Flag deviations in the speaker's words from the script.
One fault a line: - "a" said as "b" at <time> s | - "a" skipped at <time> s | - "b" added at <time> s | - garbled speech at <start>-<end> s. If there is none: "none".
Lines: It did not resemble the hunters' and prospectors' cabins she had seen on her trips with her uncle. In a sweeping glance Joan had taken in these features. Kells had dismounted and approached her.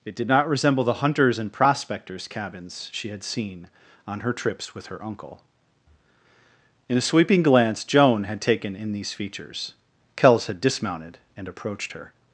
none